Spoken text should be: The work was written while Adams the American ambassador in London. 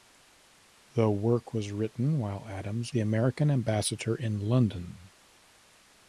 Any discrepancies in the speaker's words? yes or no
no